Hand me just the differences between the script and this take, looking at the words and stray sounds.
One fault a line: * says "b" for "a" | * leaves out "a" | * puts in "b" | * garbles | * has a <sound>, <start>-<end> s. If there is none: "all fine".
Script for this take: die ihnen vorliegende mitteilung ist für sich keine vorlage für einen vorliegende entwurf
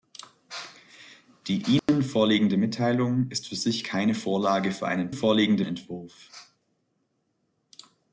* has a dropout, 1.8-1.9 s